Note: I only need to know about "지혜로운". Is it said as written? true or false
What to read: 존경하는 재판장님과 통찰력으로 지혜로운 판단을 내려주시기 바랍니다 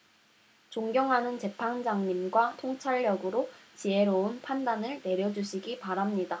true